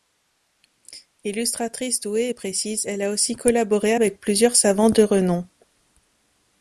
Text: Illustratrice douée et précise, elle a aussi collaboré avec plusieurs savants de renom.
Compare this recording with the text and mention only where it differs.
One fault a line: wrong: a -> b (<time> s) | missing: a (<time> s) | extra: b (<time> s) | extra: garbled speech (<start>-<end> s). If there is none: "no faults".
no faults